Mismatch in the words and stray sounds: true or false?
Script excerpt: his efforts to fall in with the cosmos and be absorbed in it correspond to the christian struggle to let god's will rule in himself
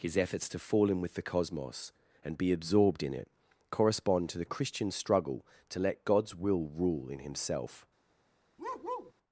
true